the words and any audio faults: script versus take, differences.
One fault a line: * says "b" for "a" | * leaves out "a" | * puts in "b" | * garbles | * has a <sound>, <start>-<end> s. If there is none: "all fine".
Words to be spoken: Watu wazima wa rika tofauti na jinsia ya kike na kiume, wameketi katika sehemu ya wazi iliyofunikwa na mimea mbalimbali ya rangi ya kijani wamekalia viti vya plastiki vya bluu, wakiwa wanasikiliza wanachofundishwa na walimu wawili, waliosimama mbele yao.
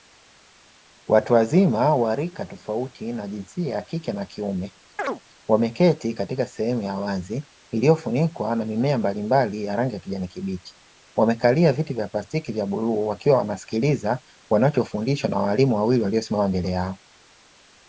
* has a chirp, 5.0-5.2 s
* puts in "kibichi"